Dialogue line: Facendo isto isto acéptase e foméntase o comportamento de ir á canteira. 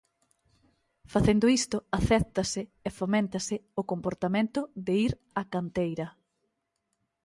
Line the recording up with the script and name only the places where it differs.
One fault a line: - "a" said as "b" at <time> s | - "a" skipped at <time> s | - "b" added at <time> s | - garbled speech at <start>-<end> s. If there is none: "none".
- "isto" skipped at 1.8 s